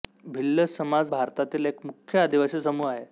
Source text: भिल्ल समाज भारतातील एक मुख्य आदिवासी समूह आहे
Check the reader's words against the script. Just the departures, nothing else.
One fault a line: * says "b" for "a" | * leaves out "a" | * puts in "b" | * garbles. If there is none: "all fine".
all fine